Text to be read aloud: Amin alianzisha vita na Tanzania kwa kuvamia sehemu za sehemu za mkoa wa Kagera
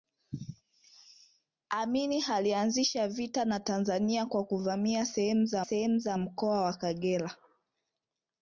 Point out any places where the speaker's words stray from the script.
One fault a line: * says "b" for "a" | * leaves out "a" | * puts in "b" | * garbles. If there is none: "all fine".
all fine